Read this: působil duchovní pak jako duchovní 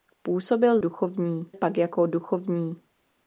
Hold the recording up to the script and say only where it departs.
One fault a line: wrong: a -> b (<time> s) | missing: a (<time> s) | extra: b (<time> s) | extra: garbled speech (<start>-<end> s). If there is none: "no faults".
no faults